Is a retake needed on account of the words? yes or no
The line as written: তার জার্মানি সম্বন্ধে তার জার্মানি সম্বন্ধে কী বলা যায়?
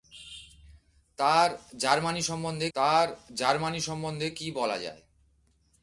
no